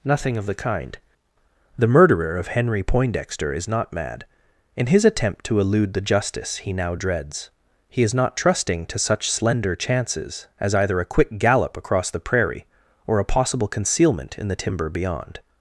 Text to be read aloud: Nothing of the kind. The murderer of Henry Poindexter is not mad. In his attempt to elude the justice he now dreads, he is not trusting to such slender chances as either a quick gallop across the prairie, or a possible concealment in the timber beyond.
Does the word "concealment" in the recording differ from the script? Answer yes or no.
no